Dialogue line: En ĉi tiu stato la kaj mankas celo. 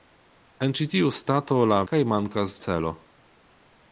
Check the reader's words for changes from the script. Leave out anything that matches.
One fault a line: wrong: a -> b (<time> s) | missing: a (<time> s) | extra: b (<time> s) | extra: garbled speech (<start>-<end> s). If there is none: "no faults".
no faults